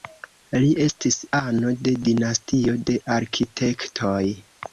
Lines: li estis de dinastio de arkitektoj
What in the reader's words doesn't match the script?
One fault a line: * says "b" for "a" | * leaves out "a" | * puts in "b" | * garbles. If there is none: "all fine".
* puts in "ano"